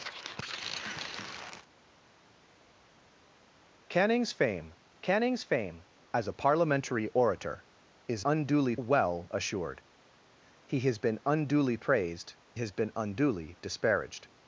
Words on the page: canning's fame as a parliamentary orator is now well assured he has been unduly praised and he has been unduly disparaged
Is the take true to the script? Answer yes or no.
no